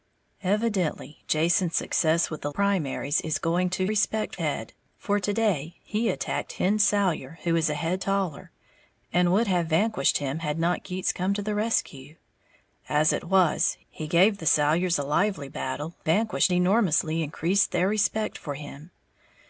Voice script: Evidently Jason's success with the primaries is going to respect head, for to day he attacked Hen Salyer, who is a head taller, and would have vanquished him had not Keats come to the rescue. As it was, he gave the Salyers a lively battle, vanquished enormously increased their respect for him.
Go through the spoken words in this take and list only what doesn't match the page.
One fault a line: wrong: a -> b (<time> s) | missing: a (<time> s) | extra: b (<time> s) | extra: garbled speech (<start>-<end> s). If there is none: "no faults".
no faults